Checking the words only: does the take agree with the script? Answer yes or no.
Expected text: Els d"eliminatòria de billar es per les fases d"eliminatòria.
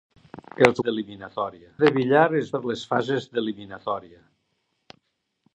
yes